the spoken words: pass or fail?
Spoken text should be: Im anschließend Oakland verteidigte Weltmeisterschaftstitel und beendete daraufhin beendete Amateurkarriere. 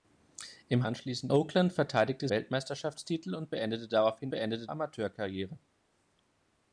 pass